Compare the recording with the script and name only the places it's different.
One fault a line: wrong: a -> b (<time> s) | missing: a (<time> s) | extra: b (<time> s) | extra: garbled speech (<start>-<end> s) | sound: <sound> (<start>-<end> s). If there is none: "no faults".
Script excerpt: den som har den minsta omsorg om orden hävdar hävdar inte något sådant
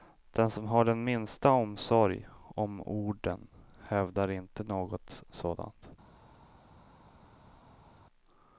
missing: hävdar (4.3 s)